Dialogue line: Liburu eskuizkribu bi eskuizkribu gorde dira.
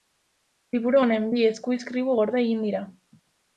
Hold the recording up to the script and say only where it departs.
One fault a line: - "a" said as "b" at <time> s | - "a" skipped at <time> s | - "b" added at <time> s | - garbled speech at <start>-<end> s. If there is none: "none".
- "eskuizkribu" said as "honen" at 1.0 s
- "egin" added at 2.5 s